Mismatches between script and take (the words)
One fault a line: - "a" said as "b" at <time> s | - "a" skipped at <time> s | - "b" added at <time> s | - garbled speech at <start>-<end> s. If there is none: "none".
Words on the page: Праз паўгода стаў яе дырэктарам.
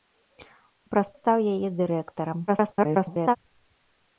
- "паўгода" skipped at 1.1 s
- garbled speech at 2.5-3.4 s